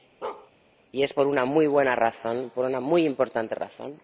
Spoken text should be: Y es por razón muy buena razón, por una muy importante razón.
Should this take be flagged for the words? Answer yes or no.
yes